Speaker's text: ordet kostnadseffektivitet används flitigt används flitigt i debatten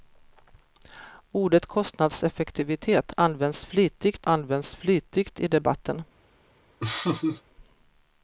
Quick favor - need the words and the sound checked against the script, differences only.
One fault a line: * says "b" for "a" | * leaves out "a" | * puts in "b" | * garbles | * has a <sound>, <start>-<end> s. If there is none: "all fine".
* has a laugh, 6.8-7.4 s